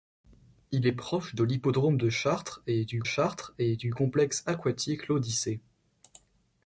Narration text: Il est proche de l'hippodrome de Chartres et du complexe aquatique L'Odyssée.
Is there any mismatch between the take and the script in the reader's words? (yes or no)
yes